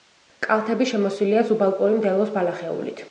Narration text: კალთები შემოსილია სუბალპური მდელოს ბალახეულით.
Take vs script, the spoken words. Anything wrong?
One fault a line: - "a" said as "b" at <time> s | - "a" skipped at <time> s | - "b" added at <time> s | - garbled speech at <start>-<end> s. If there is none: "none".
none